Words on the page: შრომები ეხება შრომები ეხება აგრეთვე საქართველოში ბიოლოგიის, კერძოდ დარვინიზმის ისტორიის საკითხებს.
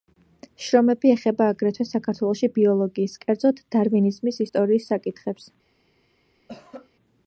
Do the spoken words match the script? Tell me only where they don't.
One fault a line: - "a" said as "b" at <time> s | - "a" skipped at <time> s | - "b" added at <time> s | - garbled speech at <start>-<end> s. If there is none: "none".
- "შრომები ეხება" skipped at 1.5 s